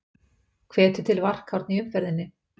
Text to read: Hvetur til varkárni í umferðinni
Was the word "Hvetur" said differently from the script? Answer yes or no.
no